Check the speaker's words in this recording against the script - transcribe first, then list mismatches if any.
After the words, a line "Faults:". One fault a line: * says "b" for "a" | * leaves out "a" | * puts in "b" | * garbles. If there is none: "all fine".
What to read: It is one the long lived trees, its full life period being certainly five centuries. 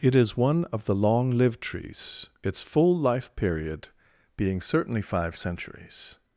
It is one of the long lived trees, its full life period being certainly five centuries.
Faults:
* puts in "of"